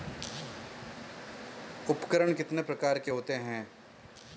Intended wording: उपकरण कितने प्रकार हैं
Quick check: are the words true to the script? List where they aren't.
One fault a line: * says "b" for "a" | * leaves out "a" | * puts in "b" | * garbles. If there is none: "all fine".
* puts in "के होते"